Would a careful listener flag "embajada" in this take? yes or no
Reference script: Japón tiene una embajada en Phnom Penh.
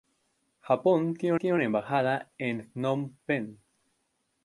no